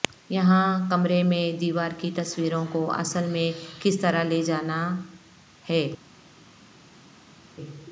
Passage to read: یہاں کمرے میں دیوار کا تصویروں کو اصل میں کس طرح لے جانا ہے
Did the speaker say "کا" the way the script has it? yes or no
no